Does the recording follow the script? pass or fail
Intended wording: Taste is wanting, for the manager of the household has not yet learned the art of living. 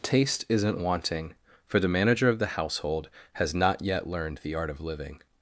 fail